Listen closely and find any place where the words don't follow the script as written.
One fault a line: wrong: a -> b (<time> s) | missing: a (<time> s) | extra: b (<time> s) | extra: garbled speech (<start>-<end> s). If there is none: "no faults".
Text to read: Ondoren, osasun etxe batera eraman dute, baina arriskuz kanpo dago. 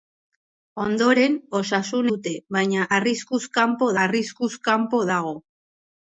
wrong: etxe batera eraman dute baina -> dute baina arriskuz kanpo (2.1 s)